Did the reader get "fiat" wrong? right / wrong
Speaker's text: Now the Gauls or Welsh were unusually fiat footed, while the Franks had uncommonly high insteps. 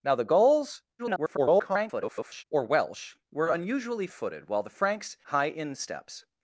wrong